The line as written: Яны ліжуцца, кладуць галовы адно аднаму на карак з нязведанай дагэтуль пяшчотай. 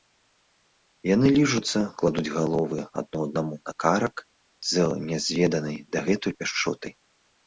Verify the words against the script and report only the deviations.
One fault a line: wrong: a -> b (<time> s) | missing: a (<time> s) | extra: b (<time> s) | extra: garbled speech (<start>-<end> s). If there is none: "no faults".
no faults